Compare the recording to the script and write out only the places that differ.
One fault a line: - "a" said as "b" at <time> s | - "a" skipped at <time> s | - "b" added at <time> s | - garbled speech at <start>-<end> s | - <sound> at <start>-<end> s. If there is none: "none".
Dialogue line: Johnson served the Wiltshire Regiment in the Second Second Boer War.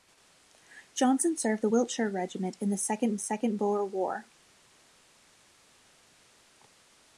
none